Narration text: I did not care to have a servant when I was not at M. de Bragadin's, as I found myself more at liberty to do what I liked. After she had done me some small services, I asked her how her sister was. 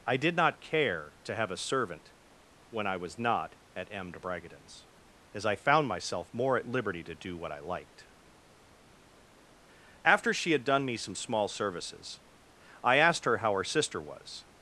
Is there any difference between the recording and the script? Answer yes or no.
no